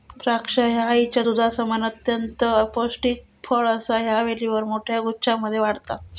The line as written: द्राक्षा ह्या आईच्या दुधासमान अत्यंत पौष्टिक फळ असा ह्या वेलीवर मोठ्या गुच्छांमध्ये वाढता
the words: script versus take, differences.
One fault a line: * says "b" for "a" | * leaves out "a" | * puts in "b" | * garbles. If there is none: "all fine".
all fine